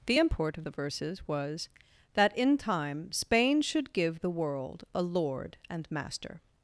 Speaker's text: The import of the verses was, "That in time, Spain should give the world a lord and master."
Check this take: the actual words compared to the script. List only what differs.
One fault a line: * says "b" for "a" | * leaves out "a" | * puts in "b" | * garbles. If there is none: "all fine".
all fine